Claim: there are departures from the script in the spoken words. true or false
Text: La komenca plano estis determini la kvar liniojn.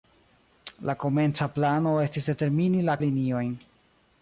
true